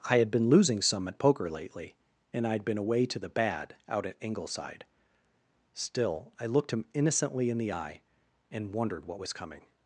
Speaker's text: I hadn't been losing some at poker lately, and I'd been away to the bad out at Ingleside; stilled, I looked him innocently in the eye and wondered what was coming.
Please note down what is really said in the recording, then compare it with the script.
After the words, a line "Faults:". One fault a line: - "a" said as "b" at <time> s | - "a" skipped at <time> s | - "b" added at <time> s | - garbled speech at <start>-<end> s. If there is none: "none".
I had been losing some at poker lately, and I'd been away to the bad out at Ingleside; still, I looked him innocently in the eye and wondered what was coming.
Faults:
- "hadn't" said as "had" at 0.2 s
- "stilled" said as "still" at 5.8 s